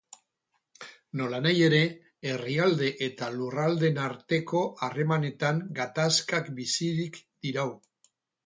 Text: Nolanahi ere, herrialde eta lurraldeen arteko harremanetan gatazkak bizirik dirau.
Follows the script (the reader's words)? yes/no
yes